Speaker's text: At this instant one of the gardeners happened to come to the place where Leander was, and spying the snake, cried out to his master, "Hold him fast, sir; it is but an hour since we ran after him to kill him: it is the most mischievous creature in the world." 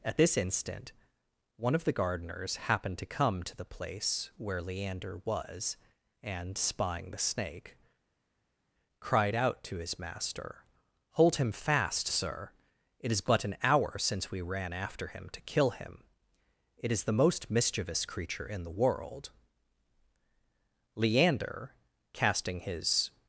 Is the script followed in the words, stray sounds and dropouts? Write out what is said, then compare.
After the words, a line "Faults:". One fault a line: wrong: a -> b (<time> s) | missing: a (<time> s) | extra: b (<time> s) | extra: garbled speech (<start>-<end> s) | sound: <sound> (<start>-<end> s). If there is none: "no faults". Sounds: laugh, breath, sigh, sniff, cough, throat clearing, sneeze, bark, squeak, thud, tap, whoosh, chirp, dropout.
At this instant one of the gardeners happened to come to the place where Leander was, and spying the snake, cried out to his master, "Hold him fast, sir; it is but an hour since we ran after him to kill him: it is the most mischievous creature in the world." Leander, casting his
Faults:
extra: Leander casting his (21.0 s)